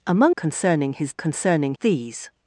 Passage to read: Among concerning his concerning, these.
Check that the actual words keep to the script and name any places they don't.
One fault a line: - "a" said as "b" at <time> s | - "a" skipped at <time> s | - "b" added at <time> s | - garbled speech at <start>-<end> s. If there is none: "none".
none